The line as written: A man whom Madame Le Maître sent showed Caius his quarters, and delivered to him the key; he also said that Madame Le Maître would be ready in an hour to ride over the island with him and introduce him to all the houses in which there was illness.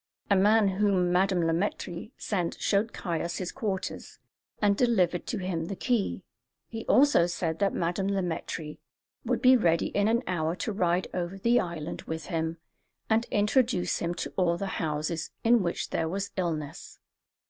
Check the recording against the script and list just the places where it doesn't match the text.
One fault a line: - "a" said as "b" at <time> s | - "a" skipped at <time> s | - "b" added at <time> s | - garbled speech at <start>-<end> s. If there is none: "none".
none